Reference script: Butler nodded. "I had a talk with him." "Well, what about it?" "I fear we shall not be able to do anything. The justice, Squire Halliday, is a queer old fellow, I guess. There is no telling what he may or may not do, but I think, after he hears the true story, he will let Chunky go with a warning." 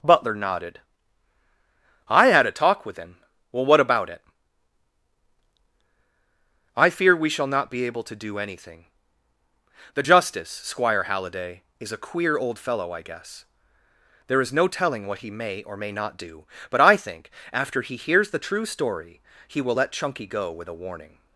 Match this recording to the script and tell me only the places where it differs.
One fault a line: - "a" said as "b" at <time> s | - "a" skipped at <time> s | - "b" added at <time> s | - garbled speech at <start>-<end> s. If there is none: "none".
none